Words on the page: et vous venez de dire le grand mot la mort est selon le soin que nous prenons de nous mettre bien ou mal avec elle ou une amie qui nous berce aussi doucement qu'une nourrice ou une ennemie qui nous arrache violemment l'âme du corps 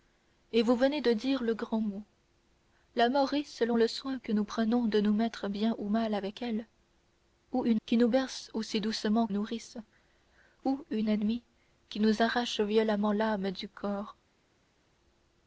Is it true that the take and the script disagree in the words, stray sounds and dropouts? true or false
true